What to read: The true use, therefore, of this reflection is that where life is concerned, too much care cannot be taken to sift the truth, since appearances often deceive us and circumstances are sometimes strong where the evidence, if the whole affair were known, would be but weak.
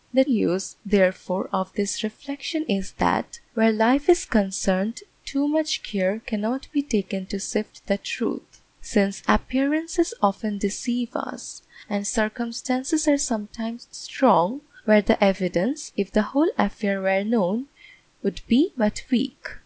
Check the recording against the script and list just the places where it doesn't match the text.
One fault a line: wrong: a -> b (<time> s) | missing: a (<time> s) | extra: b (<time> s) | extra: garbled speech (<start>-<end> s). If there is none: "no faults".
missing: true (0.2 s)